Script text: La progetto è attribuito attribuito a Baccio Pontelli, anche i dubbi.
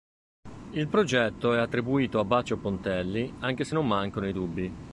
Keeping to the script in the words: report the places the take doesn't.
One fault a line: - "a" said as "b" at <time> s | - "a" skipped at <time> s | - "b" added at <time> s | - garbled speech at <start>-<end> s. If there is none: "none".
- "La" said as "Il" at 0.7 s
- "attribuito" skipped at 2.2 s
- "se non mancano" added at 3.6 s